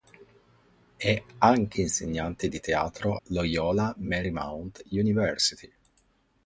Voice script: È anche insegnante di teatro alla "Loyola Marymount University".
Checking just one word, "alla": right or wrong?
wrong